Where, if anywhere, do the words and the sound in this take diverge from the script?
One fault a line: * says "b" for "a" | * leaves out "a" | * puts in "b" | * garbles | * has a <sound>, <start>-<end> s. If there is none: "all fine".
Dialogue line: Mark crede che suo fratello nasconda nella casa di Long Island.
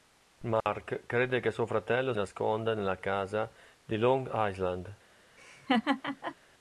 * has a dropout, 0.6-0.7 s
* has a laugh, 5.4-6.4 s